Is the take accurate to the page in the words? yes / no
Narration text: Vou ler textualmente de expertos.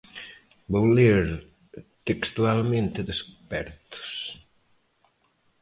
yes